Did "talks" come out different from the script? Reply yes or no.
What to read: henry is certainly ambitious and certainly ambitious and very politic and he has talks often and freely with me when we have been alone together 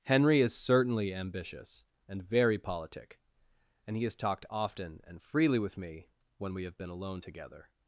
yes